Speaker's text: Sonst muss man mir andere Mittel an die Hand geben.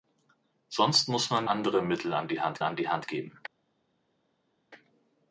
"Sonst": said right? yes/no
yes